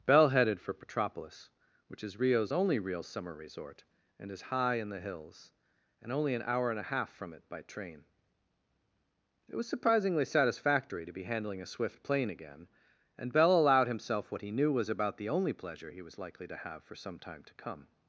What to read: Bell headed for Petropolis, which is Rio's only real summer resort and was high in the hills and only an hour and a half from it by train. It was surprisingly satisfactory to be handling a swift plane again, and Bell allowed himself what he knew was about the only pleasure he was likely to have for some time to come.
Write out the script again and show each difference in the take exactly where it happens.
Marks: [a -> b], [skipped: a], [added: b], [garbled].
Bell headed for Petropolis, which is Rio's only real summer resort and [was -> is] high in the hills and only an hour and a half from it by train. It was surprisingly satisfactory to be handling a swift plane again, and Bell allowed himself what he knew was about the only pleasure he was likely to have for some time to come.